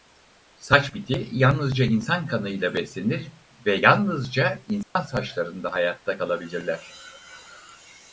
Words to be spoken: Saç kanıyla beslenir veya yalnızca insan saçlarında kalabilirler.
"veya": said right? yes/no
no